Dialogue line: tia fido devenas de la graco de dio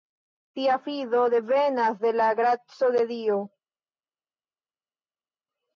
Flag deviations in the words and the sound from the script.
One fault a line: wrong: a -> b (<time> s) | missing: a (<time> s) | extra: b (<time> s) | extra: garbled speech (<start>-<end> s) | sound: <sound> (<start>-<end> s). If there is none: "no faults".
no faults